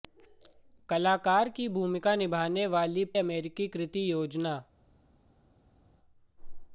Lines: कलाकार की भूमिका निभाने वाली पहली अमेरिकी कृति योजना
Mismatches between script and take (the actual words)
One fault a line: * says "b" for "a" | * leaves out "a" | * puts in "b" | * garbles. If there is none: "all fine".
* leaves out "पहली"